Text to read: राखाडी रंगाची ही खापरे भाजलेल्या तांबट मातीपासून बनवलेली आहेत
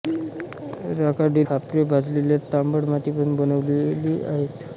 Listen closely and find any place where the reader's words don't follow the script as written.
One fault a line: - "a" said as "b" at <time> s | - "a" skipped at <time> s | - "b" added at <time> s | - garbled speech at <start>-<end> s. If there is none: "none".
- "रंगाची ही" skipped at 1.4 s